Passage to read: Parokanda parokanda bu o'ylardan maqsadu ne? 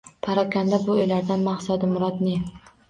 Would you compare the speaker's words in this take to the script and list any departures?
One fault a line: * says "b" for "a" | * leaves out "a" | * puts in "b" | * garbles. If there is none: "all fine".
* leaves out "parokanda"
* puts in "murod"